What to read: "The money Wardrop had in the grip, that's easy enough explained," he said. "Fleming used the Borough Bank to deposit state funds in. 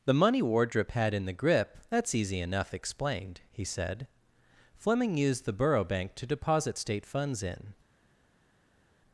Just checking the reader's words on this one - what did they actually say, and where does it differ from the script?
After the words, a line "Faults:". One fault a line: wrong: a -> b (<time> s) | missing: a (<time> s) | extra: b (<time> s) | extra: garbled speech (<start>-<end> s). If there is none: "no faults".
"The money Wardrop had in the grip, that's easy enough explained," he said. "Fleming used the Borough Bank to deposit state funds in.
Faults:
no faults